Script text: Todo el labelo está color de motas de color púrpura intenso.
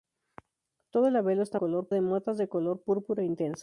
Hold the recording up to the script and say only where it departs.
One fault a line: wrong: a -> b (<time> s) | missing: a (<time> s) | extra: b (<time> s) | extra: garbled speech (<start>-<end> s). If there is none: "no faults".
no faults